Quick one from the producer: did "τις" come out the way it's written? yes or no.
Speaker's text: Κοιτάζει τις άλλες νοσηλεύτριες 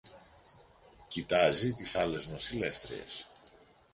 yes